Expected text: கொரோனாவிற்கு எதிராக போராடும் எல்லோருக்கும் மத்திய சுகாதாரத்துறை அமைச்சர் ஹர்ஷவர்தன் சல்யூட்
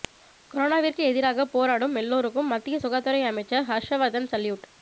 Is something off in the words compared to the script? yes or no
no